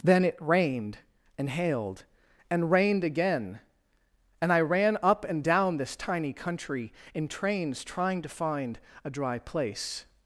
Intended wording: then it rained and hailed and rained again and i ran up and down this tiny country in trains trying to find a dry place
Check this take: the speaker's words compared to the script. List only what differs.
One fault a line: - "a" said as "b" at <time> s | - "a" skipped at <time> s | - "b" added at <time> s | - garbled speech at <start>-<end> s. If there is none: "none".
none